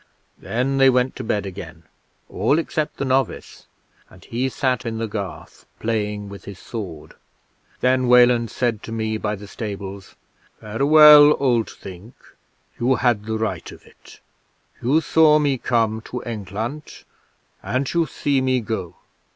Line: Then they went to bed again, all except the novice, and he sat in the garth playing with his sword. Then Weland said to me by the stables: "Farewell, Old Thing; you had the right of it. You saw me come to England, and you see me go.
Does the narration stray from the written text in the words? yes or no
no